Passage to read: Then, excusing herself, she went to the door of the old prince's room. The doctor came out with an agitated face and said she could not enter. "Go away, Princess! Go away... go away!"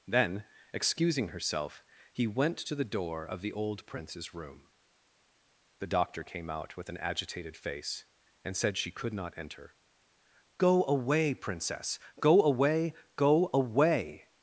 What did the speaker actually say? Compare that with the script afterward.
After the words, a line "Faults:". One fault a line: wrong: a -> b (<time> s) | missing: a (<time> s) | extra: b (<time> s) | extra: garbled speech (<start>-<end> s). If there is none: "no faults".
Then, excusing herself, he went to the door of the old prince's room. The doctor came out with an agitated face and said she could not enter. "Go away, Princess! Go away... go away!"
Faults:
wrong: she -> he (2.1 s)